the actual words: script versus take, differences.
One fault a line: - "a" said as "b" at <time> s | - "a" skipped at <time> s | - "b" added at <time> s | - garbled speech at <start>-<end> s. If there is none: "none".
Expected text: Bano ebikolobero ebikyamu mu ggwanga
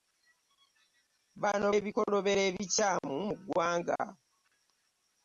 none